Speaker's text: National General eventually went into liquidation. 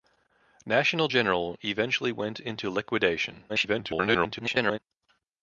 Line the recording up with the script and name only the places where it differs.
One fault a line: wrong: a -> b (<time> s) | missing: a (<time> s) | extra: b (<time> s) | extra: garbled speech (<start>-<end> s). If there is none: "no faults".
extra: garbled speech (3.5-4.8 s)